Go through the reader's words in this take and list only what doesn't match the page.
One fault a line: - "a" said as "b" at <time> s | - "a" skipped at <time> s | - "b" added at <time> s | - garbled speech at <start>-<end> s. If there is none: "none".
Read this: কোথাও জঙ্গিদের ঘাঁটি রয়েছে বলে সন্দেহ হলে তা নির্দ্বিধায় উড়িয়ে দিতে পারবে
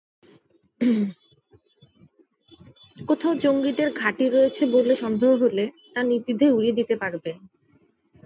none